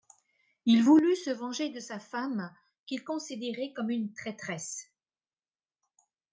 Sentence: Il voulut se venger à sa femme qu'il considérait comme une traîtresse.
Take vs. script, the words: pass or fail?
fail